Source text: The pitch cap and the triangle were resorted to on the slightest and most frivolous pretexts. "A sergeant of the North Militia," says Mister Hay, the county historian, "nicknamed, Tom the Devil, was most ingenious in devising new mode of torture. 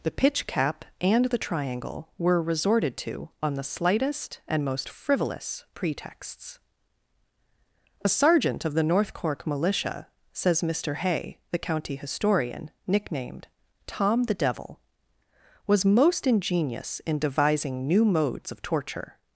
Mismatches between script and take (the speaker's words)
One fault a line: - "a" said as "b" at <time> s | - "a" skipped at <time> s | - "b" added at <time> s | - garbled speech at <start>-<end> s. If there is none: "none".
- "Cork" added at 9.1 s
- "mode" said as "modes" at 18.0 s